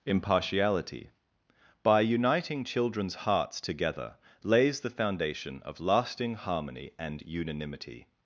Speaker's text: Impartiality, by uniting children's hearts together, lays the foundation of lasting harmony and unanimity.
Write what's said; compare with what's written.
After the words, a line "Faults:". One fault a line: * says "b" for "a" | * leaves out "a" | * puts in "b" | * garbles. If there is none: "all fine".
Impartiality, by uniting children's hearts together, lays the foundation of lasting harmony and unanimity.
Faults:
all fine